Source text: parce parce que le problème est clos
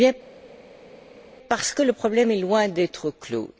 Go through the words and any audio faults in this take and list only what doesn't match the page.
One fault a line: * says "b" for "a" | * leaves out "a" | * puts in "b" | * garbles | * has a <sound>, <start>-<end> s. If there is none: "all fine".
* leaves out "parce"
* puts in "loin d'être"